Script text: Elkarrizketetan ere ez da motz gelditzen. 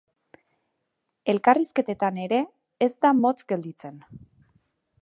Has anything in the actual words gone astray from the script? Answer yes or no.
no